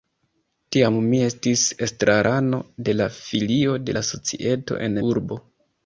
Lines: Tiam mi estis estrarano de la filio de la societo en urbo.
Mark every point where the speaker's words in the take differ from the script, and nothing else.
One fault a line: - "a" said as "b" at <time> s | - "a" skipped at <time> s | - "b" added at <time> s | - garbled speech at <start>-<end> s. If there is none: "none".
none